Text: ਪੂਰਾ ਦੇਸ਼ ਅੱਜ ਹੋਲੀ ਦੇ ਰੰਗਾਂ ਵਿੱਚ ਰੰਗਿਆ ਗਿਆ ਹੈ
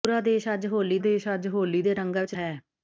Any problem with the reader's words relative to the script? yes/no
yes